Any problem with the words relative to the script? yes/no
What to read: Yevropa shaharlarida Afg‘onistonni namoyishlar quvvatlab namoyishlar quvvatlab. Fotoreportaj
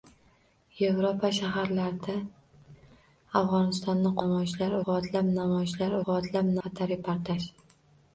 no